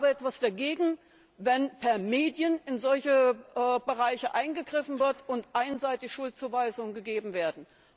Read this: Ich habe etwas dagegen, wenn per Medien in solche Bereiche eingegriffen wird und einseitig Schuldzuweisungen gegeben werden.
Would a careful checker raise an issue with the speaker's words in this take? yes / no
no